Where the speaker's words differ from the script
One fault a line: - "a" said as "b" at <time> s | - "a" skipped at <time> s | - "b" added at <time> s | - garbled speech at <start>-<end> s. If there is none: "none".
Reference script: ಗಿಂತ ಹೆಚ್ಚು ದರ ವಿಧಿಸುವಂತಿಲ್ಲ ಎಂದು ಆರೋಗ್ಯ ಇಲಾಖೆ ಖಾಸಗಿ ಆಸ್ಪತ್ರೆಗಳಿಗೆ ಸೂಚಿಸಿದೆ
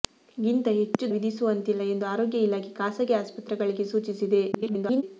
- "ದರ" skipped at 1.1 s
- garbled speech at 4.5-5.0 s